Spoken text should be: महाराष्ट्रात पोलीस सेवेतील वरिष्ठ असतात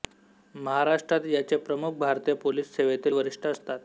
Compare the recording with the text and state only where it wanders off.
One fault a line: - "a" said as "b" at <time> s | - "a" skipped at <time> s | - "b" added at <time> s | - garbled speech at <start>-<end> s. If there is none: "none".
- "याचे प्रमुख भारतीय" added at 1.2 s